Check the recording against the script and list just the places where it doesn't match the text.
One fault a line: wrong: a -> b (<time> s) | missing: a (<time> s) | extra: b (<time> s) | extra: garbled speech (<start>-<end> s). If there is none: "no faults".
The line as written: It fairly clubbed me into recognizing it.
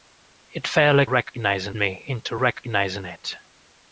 wrong: clubbed -> recognizing (1.0 s)